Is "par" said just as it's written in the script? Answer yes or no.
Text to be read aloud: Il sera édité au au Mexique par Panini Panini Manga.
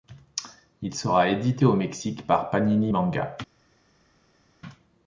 yes